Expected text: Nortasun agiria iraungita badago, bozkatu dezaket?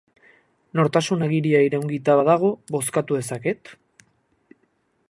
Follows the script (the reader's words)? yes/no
yes